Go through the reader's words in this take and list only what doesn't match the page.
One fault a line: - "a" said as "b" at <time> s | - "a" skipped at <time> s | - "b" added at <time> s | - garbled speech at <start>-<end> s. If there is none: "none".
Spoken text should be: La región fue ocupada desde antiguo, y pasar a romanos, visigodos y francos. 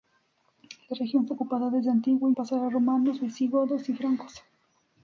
none